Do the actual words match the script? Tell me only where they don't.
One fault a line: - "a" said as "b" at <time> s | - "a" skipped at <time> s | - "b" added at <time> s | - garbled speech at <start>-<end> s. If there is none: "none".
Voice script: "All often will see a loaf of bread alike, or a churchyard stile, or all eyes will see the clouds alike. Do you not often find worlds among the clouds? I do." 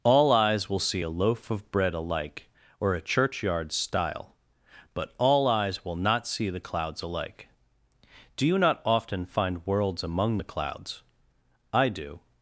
- "often" said as "eyes" at 0.3 s
- "or" said as "but" at 4.9 s
- "not" added at 6.0 s